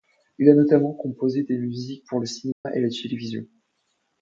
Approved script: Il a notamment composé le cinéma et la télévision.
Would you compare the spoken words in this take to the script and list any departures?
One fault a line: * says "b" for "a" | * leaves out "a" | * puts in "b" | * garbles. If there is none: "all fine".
* puts in "des musiques pour"